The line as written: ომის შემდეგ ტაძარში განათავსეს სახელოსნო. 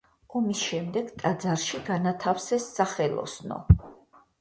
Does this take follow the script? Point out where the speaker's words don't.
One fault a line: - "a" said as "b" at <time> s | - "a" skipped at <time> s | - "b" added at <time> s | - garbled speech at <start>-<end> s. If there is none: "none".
none